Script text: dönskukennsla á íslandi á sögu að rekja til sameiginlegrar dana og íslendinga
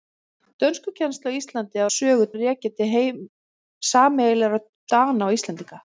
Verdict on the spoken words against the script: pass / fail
pass